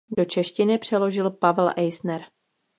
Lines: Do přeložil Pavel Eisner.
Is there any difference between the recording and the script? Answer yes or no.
yes